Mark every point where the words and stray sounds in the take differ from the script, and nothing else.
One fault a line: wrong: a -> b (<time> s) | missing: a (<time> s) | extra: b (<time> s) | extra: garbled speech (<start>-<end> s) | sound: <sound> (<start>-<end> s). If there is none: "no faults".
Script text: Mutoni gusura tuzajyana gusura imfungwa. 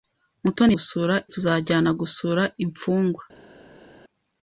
no faults